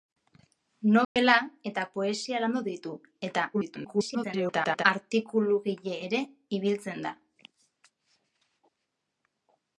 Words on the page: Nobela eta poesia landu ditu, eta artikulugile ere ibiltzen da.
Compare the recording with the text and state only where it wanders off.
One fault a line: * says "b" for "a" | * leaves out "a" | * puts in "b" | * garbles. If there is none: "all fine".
* garbles